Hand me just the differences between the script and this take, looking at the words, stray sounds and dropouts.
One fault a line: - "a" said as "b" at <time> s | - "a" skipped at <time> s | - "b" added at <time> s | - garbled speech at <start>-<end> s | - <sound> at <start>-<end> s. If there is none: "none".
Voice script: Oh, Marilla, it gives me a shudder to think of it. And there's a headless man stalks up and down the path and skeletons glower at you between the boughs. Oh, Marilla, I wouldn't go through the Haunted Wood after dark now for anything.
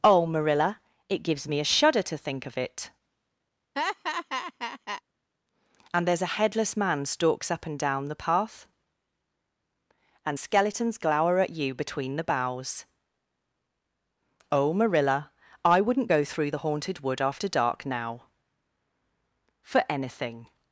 - laugh at 3.8-5.0 s